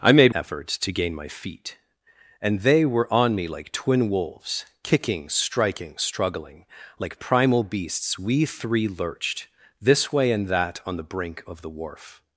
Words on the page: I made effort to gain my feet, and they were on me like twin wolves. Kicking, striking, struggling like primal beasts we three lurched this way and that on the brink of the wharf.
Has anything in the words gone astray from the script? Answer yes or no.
no